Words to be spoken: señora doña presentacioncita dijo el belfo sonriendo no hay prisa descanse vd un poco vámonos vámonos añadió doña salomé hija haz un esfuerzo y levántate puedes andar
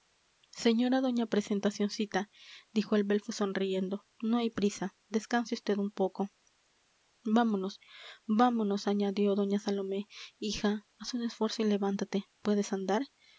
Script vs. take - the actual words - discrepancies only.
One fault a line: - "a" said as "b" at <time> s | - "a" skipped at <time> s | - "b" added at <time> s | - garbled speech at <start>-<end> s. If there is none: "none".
none